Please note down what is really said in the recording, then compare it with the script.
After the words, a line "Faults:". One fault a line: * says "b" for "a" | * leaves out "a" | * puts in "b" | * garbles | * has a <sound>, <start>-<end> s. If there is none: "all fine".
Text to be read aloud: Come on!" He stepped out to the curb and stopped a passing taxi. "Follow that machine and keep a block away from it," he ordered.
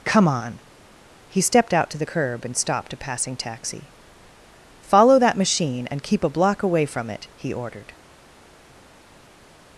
Come on!" He stepped out to the curb and stopped a passing taxi. "Follow that machine and keep a block away from it," he ordered.
Faults:
all fine